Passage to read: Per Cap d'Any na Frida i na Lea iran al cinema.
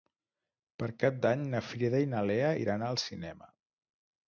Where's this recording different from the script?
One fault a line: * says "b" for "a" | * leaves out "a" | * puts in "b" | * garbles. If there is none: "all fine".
all fine